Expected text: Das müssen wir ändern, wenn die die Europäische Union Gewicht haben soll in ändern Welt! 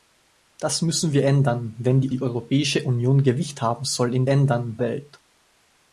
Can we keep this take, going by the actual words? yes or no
yes